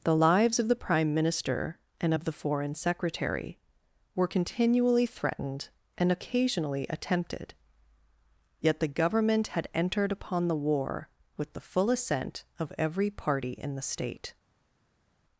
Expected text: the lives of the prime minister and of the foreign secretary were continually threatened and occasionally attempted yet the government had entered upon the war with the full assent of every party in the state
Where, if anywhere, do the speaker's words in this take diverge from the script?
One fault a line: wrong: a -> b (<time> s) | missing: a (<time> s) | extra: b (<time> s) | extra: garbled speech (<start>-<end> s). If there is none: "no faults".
no faults